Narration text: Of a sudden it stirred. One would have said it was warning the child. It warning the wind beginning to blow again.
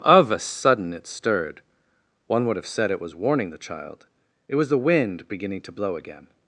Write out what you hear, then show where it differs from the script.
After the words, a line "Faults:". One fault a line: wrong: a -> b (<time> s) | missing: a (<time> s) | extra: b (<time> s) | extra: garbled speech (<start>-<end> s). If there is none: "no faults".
Of a sudden it stirred. One would have said it was warning the child. It was the wind beginning to blow again.
Faults:
wrong: warning -> was (4.5 s)